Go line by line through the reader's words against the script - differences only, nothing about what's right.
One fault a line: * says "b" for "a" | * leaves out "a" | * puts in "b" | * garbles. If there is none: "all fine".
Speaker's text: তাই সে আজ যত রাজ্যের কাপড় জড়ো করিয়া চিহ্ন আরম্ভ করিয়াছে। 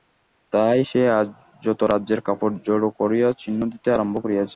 * puts in "দিতে"